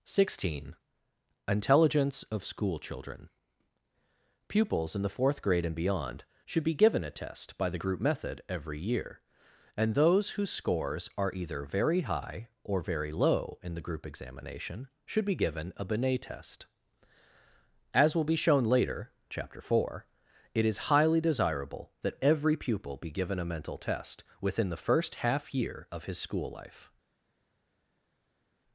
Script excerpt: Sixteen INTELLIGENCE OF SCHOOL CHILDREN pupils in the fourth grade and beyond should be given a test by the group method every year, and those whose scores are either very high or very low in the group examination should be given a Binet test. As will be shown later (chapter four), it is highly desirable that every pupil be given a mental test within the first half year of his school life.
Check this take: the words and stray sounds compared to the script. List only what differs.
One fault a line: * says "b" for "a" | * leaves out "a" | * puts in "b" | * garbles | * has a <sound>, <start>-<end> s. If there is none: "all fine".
all fine